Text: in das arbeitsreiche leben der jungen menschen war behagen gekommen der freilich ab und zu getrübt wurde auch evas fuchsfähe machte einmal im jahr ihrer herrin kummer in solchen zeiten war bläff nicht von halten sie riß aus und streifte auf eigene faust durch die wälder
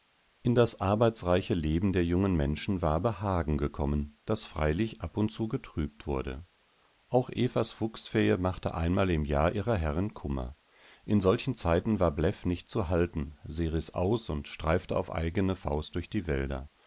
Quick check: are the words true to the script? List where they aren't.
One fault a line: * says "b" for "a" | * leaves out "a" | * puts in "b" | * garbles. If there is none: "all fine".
* says "das" for "der"
* says "zu" for "von"